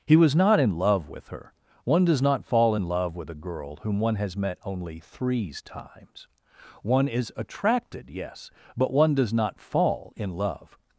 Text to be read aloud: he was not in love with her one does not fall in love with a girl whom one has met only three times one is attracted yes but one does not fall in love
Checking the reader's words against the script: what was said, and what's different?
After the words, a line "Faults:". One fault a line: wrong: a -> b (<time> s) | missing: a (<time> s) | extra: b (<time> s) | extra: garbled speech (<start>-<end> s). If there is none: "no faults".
he was not in love with her one does not fall in love with a girl whom one has met only threes times one is attracted yes but one does not fall in love
Faults:
wrong: three -> threes (5.0 s)